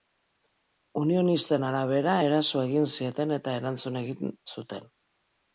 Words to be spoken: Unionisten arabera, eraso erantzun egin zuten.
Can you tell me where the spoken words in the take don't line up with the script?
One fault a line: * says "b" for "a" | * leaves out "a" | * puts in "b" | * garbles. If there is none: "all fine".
* puts in "egin zieten eta"